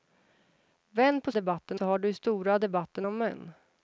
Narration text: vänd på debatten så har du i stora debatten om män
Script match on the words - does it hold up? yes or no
yes